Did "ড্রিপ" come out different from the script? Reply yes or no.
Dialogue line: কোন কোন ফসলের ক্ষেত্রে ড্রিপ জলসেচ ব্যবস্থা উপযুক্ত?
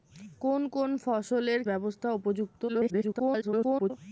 yes